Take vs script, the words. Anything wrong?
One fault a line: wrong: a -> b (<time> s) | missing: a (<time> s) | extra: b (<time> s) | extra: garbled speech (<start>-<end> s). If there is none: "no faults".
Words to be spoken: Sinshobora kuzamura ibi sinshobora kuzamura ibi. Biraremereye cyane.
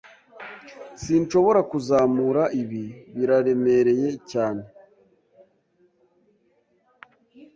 missing: sinshobora kuzamura ibi (2.8 s)